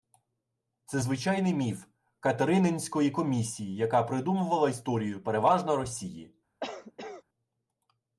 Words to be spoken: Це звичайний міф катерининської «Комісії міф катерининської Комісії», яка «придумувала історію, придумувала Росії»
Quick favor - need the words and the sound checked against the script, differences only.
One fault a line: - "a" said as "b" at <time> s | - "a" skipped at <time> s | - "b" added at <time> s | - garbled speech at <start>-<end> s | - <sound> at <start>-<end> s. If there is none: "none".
- "міф катерининської Комісії" skipped at 3.8 s
- "придумувала" said as "переважно" at 5.2 s
- cough at 6.6-7.2 s